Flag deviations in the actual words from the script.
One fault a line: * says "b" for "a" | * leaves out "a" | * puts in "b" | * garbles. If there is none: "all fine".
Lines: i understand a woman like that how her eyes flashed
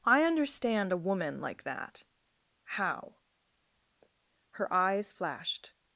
all fine